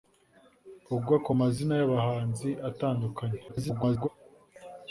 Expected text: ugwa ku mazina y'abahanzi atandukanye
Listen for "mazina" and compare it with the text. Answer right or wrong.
right